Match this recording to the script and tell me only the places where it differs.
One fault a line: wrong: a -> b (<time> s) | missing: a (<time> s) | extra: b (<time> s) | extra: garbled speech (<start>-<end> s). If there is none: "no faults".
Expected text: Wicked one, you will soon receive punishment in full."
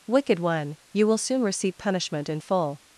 no faults